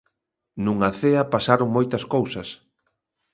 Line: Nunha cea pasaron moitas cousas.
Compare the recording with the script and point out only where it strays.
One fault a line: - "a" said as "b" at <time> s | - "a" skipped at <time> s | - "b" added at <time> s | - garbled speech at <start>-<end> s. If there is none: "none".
none